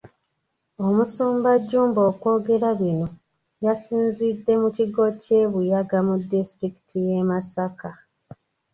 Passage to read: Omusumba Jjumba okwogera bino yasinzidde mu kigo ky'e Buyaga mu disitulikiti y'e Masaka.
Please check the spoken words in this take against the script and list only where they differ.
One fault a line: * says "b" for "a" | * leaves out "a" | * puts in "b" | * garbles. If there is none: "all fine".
all fine